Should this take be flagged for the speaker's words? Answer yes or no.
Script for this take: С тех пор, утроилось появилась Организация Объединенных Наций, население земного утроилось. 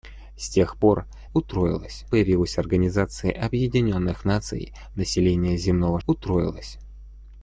no